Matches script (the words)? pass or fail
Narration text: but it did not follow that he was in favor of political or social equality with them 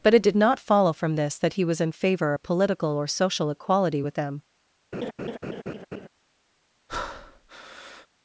fail